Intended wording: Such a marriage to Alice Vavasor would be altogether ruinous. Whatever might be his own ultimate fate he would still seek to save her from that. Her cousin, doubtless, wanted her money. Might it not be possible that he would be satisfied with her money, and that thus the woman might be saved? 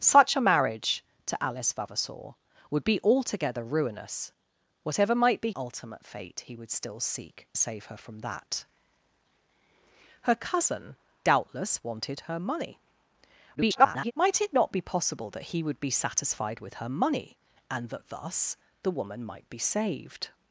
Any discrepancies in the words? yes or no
yes